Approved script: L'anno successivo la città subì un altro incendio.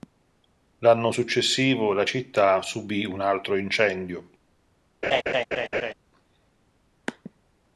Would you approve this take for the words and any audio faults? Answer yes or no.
no